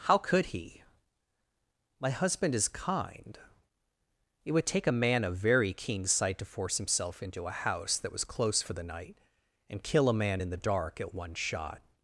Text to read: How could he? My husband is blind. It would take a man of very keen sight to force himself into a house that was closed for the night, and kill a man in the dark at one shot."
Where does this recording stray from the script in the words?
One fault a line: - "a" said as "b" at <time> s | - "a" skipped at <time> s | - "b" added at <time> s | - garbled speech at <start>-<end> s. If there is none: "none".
- "blind" said as "kind" at 2.7 s
- "closed" said as "close" at 8.2 s